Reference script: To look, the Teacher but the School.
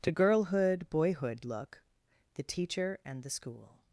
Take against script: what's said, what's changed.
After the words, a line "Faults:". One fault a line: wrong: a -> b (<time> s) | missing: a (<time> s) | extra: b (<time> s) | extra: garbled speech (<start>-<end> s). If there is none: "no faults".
To girlhood, boyhood look, the Teacher and the School.
Faults:
extra: girlhood boyhood (0.1 s)
wrong: but -> and (3.0 s)